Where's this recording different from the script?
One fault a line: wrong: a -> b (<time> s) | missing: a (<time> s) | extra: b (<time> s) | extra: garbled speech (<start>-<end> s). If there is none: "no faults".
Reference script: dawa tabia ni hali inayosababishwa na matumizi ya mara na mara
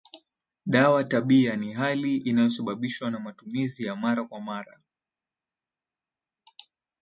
wrong: na -> kwa (4.2 s)